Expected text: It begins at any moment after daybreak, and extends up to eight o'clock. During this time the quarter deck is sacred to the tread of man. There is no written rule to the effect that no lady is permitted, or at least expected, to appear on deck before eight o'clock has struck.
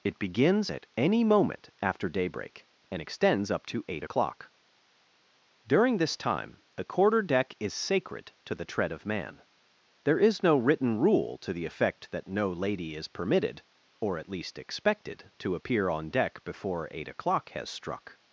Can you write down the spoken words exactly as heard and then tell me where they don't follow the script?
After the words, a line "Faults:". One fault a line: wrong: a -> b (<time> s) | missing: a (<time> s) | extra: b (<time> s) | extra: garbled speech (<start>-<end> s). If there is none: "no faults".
It begins at any moment after daybreak, and extends up to eight o'clock. During this time the quarter deck is sacred to the tread of man. There is no written rule to the effect that no lady is permitted, or at least expected, to appear on deck before eight o'clock has struck.
Faults:
no faults